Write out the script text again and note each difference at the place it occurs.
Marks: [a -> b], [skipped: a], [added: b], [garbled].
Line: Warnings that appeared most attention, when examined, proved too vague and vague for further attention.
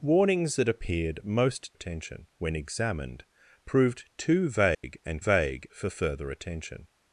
Warnings that appeared most attention, when examined, proved too vague and vague for further attention.